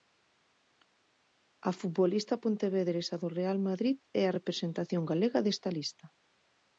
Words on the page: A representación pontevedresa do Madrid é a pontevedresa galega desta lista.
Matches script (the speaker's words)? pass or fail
fail